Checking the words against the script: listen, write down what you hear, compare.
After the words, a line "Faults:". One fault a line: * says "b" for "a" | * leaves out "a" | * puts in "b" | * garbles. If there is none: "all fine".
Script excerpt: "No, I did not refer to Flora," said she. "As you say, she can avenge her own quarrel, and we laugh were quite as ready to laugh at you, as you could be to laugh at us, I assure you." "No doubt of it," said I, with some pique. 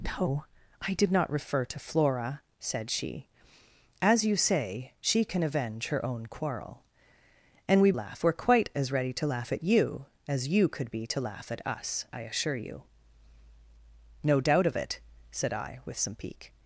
"No, I did not refer to Flora," said she. "As you say, she can avenge her own quarrel, and we laugh were quite as ready to laugh at you, as you could be to laugh at us, I assure you." "No doubt of it," said I, with some pique.
Faults:
all fine